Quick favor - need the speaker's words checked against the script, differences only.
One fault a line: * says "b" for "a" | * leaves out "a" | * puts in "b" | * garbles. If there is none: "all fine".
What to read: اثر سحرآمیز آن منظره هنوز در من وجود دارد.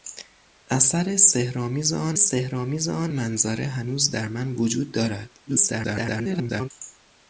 * puts in "سحرآمیز آن"
* garbles